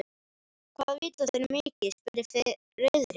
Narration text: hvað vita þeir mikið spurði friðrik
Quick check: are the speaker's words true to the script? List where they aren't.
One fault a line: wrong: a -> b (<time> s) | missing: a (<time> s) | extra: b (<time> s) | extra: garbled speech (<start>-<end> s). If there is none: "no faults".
no faults